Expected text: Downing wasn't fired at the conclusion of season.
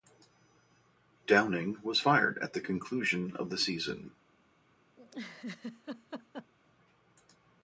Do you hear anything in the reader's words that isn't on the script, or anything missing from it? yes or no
yes